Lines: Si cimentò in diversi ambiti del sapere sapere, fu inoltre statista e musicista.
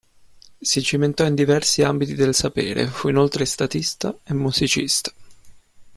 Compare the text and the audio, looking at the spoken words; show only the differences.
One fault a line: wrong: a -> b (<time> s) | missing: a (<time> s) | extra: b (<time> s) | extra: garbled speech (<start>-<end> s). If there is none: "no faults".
missing: sapere (2.9 s)